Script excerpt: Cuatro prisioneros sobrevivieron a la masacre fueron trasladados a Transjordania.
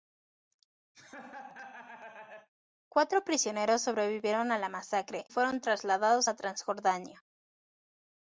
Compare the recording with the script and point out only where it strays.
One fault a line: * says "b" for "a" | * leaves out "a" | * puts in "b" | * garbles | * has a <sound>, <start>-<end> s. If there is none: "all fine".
* has a laugh, 0.9-2.5 s